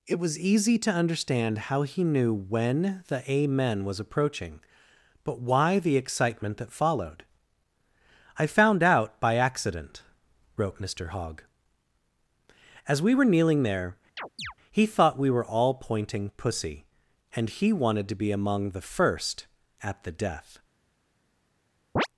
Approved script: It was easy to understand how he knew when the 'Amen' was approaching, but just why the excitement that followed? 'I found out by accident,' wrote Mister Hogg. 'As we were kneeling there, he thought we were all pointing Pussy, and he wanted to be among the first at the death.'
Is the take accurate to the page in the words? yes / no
no